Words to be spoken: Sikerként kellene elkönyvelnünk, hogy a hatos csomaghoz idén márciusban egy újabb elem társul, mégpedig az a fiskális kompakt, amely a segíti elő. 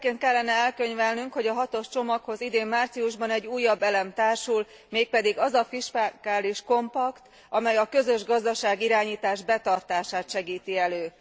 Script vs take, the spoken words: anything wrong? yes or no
yes